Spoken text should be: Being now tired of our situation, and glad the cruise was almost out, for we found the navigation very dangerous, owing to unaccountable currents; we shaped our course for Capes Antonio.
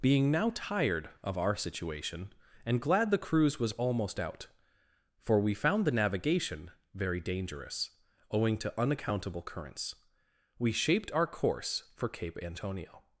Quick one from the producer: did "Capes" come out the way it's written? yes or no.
no